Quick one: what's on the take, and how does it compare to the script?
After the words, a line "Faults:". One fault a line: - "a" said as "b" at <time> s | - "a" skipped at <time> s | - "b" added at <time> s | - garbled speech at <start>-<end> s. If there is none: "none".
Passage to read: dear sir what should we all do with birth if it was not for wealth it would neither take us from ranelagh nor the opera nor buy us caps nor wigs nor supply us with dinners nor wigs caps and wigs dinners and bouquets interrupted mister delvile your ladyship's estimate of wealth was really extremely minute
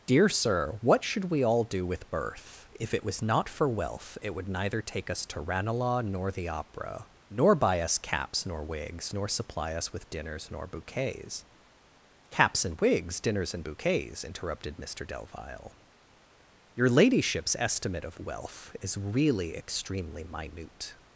dear sir what should we all do with birth if it was not for wealth it would neither take us to ranelagh nor the opera nor buy us caps nor wigs nor supply us with dinners nor bouquets caps and wigs dinners and bouquets interrupted mister delvile your ladyship's estimate of wealth is really extremely minute
Faults:
- "from" said as "to" at 5.2 s
- "wigs" said as "bouquets" at 10.7 s
- "was" said as "is" at 18.8 s